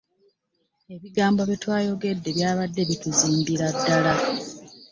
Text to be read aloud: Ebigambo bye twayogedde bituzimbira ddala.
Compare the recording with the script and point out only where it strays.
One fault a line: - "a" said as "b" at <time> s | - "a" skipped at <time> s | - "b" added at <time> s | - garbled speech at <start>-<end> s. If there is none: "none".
- "byabadde" added at 2.3 s